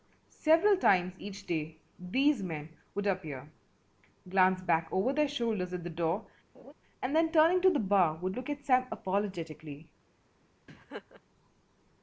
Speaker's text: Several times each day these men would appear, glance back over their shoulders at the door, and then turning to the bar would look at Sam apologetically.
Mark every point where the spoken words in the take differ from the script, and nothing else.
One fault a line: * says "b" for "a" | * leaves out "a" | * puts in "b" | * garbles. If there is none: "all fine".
all fine